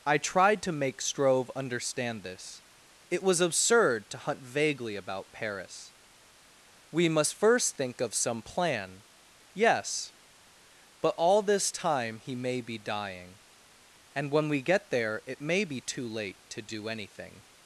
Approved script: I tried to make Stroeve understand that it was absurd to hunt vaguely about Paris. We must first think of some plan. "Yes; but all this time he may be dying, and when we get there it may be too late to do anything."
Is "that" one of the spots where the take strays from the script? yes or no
yes